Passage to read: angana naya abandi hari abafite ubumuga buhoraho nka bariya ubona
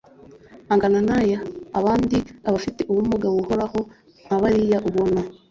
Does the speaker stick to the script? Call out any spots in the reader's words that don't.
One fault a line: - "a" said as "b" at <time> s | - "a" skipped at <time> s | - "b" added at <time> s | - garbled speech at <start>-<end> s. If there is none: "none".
- "hari" skipped at 2.2 s